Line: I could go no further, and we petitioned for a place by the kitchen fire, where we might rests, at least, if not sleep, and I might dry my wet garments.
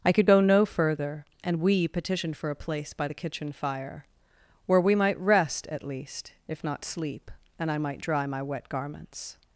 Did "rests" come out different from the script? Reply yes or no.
yes